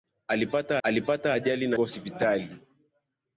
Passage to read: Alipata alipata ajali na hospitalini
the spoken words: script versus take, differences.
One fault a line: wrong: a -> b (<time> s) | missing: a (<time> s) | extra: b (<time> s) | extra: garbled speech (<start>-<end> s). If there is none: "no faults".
no faults